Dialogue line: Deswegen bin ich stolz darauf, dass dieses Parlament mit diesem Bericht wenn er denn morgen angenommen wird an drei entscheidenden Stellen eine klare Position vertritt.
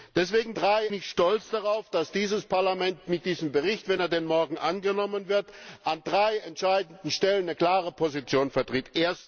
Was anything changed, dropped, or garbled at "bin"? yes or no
yes